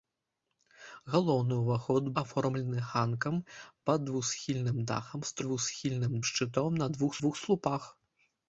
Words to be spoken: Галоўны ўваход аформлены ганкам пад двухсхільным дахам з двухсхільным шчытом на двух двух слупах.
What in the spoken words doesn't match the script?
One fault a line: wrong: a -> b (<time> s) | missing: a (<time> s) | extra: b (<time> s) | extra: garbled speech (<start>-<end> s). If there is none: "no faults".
no faults